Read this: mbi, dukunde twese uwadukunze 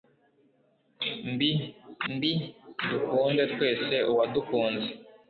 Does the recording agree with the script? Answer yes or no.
no